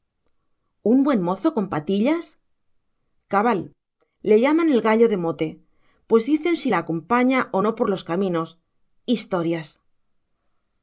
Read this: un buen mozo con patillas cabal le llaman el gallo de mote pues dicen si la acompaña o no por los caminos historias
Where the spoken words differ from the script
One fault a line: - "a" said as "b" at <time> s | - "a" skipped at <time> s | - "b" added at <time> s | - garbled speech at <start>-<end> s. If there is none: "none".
none